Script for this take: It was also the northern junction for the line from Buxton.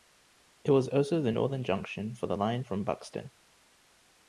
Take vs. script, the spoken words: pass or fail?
pass